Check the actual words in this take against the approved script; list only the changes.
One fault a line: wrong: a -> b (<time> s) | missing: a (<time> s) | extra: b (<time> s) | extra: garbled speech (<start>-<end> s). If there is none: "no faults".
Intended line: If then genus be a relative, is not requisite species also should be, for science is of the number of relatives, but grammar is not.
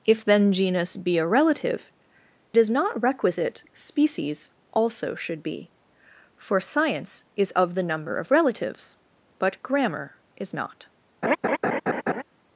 no faults